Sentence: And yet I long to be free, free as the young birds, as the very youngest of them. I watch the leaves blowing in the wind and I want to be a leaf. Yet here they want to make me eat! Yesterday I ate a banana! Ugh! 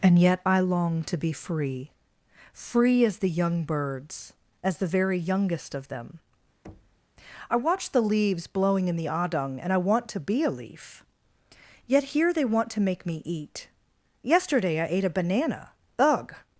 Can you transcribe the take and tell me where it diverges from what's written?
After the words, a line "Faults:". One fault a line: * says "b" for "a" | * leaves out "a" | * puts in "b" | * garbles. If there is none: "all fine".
And yet I long to be free, free as the young birds, as the very youngest of them. I watch the leaves blowing in the adung and I want to be a leaf. Yet here they want to make me eat! Yesterday I ate a banana! Ugh!
Faults:
* says "adung" for "wind"